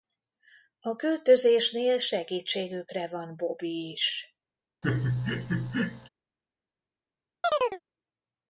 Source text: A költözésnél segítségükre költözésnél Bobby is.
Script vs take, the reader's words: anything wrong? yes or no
yes